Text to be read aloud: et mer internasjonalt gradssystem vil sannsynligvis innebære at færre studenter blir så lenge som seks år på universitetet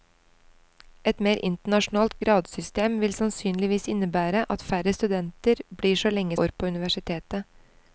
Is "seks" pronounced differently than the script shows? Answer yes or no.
yes